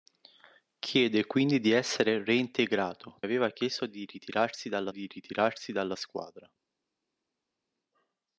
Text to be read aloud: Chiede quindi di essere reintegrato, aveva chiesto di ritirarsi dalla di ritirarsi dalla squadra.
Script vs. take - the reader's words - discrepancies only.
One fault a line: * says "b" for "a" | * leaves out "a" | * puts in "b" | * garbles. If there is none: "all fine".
all fine